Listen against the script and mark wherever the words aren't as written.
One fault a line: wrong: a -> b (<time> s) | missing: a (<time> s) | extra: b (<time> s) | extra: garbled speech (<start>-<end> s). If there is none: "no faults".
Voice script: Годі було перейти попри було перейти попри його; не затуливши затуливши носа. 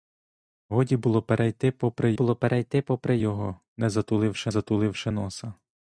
no faults